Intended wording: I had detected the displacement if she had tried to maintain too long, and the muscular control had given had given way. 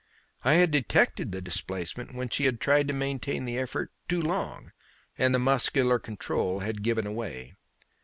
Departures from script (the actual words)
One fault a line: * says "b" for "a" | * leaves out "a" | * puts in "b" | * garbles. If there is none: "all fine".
* says "when" for "if"
* puts in "the effort"
* leaves out "had given"